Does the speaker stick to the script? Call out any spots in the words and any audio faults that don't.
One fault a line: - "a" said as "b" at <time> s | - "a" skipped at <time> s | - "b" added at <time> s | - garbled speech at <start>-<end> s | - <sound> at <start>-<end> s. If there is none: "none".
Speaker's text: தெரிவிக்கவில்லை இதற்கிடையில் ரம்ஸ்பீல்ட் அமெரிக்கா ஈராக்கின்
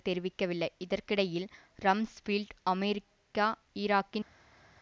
none